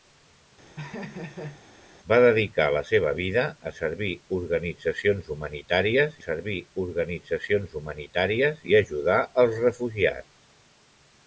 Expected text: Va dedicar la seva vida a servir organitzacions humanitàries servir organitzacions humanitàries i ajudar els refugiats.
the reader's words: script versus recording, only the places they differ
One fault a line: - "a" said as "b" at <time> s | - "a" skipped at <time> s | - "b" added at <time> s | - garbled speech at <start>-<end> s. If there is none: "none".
none